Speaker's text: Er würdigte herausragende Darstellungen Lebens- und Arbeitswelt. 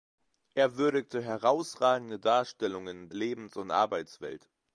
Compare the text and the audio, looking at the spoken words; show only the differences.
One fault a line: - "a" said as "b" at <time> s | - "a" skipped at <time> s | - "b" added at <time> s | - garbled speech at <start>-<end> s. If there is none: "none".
none